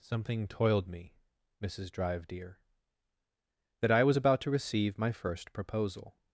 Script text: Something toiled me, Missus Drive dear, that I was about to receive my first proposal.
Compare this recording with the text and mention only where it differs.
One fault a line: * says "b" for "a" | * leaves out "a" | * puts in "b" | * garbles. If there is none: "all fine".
all fine